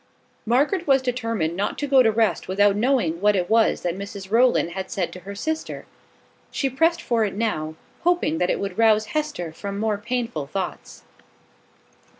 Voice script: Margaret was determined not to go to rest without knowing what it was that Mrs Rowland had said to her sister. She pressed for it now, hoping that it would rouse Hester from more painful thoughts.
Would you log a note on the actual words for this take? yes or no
no